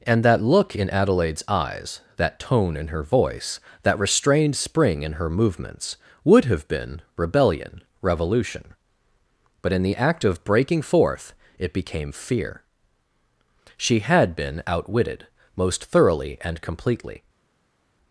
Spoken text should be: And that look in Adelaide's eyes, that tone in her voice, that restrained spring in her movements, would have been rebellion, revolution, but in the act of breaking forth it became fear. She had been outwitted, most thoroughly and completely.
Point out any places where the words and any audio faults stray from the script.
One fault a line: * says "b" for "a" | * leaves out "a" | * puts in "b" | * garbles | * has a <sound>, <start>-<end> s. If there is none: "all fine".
all fine